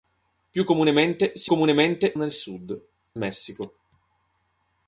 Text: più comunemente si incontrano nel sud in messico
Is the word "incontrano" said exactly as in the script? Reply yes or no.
no